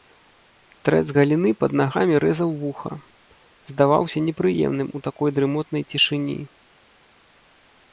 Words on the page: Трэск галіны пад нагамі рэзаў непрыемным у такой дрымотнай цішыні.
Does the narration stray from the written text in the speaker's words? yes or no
yes